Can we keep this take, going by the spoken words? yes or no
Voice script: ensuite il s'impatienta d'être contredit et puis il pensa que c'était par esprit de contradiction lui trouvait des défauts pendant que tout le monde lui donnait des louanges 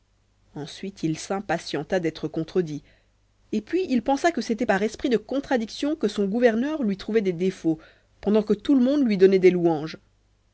no